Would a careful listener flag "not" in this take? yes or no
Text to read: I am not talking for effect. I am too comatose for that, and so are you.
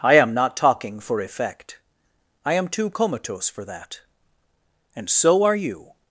no